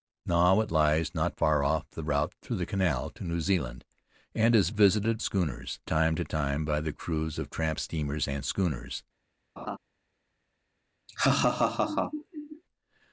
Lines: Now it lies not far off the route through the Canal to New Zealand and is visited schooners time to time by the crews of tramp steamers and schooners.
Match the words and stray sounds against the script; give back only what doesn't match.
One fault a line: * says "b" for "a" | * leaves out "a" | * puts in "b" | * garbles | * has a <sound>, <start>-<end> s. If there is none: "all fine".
* has a laugh, 9.6-9.8 s
* has a laugh, 11.1-12.6 s